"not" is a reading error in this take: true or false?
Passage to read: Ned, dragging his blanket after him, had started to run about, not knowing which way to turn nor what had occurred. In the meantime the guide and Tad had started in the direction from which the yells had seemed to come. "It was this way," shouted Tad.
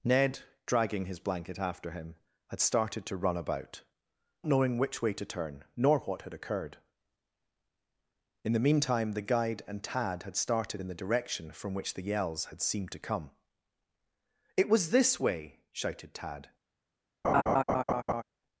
true